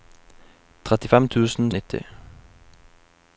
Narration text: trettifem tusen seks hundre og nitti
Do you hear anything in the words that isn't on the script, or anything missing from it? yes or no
yes